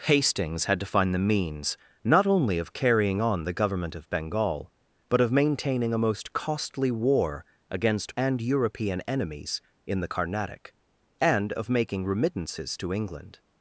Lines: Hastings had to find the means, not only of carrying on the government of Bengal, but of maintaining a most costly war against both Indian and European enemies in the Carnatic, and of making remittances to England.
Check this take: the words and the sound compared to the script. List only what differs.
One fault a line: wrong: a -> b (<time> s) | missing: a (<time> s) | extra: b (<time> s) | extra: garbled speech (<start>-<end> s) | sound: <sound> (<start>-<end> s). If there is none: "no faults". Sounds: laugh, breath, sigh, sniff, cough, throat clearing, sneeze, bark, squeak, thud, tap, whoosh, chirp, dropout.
missing: both Indian (8.2 s)